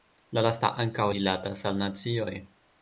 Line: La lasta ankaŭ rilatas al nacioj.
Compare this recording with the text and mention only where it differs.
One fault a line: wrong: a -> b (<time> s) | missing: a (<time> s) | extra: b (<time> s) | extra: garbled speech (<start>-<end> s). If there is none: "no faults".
no faults